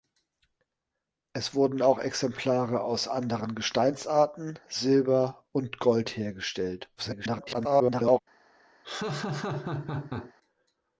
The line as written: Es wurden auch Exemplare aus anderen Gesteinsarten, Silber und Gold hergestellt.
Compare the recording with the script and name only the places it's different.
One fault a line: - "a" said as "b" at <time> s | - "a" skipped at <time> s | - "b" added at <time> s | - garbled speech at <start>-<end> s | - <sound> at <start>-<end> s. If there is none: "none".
- garbled speech at 7.0-8.2 s
- laugh at 8.8-10.3 s